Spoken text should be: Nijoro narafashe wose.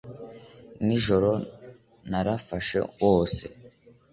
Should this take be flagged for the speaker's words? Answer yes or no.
no